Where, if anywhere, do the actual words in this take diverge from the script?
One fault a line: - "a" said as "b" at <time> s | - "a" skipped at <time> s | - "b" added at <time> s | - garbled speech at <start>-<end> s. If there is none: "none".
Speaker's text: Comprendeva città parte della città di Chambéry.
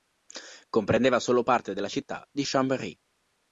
- "città" said as "solo" at 1.2 s